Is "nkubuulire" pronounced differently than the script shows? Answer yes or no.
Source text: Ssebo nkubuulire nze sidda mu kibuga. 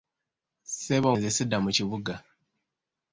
yes